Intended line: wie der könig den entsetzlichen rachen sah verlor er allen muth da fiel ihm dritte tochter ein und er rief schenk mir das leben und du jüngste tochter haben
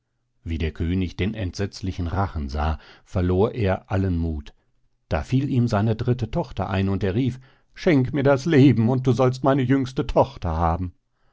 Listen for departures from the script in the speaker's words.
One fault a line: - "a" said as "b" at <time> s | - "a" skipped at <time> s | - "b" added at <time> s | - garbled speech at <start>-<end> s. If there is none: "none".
- "seine" added at 5.7 s
- "sollst meine" added at 9.1 s